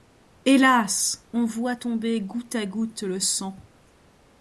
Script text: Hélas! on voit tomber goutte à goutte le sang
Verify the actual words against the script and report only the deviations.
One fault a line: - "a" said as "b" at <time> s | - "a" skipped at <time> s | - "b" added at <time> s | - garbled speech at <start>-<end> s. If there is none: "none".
none